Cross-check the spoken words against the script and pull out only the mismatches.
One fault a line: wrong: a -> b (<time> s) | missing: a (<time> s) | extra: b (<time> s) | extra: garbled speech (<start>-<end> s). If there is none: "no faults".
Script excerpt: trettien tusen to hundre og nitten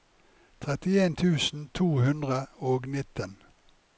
no faults